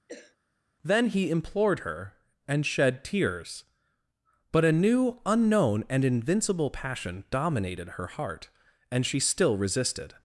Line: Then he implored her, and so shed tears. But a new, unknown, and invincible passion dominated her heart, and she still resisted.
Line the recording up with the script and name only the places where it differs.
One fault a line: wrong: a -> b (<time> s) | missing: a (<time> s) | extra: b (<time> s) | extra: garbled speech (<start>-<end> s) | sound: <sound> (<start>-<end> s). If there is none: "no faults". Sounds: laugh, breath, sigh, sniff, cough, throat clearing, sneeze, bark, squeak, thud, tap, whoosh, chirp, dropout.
sound: cough (0.1-0.4 s)
missing: so (2.6 s)